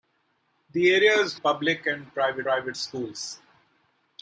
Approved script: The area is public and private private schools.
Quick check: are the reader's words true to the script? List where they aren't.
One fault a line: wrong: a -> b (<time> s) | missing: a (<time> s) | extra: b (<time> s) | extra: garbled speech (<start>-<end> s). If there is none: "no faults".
no faults